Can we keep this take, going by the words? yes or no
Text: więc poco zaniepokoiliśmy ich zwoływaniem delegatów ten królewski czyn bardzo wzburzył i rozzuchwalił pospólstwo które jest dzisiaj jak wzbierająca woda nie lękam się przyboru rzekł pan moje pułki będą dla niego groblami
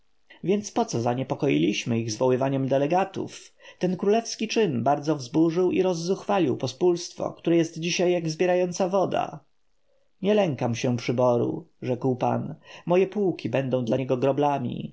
yes